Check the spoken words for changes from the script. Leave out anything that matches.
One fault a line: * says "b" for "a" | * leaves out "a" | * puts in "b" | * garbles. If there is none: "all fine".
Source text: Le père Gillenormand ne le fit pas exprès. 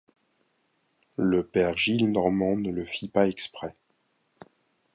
all fine